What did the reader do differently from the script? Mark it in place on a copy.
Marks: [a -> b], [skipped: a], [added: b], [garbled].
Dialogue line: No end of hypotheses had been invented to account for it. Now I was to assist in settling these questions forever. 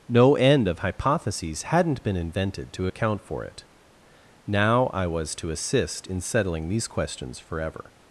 No end of hypotheses [had -> hadn't] been invented to account for it. Now I was to assist in settling these questions forever.